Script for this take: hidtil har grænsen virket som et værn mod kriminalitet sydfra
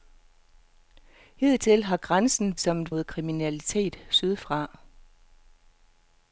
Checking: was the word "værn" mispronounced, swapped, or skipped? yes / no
yes